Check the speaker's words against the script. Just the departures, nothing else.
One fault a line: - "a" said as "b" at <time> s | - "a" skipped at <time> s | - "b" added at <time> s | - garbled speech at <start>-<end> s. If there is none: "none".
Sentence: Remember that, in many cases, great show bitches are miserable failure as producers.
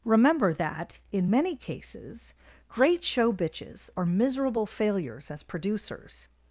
- "failure" said as "failures" at 4.6 s